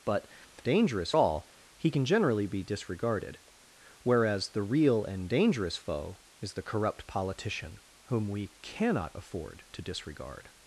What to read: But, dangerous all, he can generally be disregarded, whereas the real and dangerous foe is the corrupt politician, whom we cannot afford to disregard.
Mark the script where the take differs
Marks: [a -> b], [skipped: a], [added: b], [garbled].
But, dangerous all, he can generally be disregarded, whereas the real and dangerous foe is the corrupt politician, whom we cannot afford to disregard.